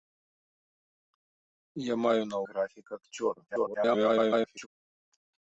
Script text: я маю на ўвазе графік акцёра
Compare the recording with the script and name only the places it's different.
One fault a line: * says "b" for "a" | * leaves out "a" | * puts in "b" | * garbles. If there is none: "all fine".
* leaves out "ўвазе"
* garbles